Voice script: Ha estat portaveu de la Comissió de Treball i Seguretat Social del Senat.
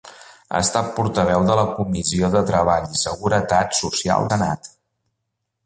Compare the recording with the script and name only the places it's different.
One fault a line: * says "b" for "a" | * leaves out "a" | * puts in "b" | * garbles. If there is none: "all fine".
* leaves out "del"